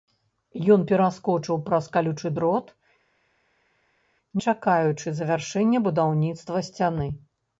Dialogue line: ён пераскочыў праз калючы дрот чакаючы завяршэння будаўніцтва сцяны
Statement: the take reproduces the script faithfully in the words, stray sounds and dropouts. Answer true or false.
true